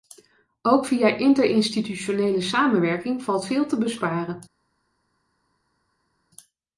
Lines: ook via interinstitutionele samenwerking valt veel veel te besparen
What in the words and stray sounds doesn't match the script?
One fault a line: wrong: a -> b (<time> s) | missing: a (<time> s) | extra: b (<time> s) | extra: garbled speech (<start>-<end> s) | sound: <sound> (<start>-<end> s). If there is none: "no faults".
missing: veel (3.7 s)